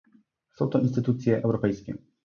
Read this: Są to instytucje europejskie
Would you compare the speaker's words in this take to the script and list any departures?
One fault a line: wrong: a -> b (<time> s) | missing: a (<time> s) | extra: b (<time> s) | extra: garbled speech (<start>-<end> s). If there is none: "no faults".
no faults